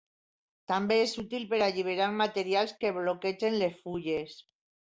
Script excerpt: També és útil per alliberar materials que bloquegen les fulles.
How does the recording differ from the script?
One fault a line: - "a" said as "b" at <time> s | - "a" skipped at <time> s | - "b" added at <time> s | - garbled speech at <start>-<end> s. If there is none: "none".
none